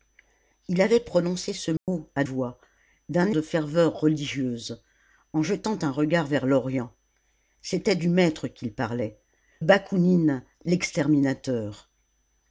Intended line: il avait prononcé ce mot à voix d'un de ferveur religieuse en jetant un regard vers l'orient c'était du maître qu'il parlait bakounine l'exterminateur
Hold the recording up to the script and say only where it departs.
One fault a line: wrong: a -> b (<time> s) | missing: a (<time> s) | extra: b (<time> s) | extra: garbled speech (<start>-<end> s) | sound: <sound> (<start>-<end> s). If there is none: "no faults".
sound: dropout (1.8-1.9 s)